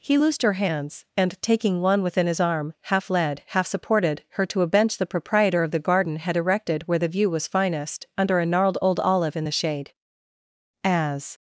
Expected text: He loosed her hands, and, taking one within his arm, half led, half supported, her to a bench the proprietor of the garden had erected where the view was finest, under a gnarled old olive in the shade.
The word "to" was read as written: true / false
true